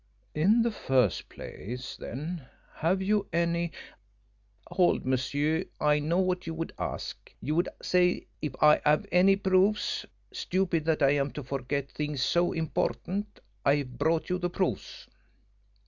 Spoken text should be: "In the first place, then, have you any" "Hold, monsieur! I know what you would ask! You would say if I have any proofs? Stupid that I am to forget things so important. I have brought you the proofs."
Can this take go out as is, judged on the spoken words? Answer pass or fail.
pass